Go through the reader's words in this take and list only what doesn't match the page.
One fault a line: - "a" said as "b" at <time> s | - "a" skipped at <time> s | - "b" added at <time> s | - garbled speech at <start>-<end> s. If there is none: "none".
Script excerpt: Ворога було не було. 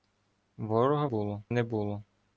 none